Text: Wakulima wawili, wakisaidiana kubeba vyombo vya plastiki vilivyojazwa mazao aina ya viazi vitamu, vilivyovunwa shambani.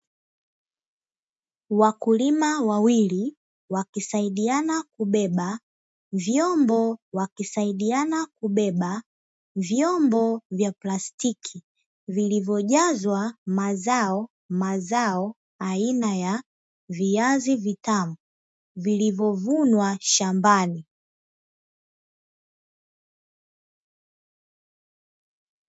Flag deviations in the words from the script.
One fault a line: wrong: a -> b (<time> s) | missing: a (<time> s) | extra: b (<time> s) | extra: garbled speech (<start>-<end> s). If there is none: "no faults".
extra: wakisaidiana kubeba vyombo (7.1 s)
extra: mazao (14.5 s)